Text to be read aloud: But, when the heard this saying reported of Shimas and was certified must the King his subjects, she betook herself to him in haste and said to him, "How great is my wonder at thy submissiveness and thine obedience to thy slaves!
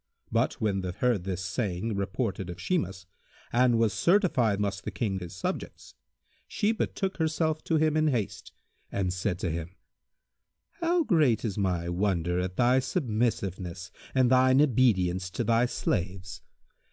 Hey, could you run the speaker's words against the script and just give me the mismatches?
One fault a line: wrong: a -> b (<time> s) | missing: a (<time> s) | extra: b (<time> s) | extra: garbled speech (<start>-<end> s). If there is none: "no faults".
no faults